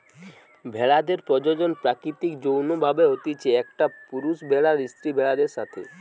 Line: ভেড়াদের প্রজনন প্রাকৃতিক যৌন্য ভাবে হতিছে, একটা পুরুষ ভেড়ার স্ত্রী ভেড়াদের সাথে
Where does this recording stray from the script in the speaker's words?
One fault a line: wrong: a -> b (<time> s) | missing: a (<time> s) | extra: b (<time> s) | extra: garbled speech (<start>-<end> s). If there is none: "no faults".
no faults